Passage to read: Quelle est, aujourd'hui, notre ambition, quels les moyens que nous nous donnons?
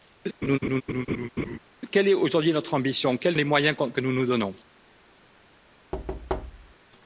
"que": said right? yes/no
yes